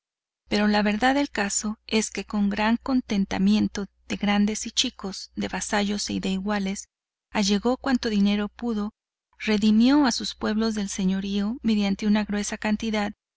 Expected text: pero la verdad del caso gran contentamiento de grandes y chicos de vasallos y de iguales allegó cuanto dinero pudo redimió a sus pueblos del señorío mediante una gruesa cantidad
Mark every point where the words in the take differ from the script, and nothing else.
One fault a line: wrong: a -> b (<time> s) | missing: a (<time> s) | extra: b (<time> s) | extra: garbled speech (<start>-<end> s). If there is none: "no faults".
extra: es que con (1.9 s)